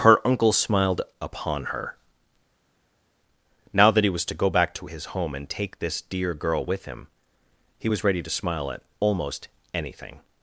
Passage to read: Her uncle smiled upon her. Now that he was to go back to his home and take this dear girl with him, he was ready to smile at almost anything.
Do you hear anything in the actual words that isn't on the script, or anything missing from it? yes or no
no